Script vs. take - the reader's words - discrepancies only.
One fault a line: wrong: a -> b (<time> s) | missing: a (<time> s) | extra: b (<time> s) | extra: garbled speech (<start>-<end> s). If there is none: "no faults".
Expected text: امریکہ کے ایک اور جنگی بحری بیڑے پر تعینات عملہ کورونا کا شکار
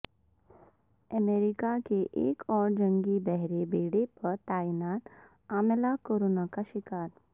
no faults